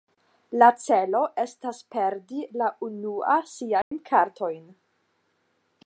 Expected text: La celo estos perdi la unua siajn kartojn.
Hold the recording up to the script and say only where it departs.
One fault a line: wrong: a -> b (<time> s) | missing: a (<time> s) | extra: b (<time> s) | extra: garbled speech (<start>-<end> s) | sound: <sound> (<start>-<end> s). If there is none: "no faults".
wrong: estos -> estas (1.4 s)
sound: dropout (3.8-3.9 s)